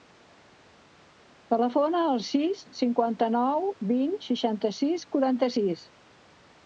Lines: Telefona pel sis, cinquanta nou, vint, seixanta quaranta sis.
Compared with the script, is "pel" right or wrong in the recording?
wrong